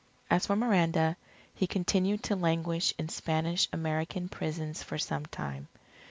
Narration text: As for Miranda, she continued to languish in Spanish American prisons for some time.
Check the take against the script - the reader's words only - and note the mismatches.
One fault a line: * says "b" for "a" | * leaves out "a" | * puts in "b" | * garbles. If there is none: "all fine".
* says "he" for "she"